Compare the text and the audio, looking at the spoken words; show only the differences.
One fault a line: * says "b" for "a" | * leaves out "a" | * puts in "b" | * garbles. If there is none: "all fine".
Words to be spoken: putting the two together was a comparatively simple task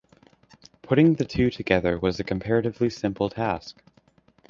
all fine